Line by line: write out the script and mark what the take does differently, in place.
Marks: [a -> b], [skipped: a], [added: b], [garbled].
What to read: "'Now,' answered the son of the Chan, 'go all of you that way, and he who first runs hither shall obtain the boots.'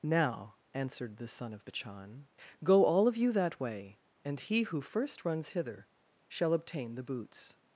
"'Now,' answered the son of the Chan, 'go all of you that way, and he who first runs hither shall obtain the boots.'